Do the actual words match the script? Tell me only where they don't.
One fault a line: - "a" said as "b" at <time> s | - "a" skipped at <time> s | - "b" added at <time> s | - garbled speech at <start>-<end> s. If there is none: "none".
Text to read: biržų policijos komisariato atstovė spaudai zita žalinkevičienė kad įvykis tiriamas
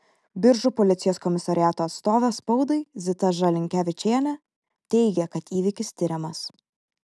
- "teigė" added at 5.0 s